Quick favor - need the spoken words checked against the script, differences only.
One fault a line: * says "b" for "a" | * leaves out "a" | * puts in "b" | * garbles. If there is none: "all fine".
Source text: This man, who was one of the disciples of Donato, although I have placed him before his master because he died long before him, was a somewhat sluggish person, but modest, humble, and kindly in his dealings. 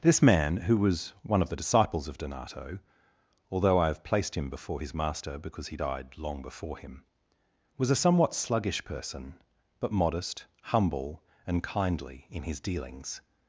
all fine